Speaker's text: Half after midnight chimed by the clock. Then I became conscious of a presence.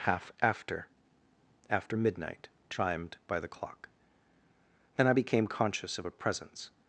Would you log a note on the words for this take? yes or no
yes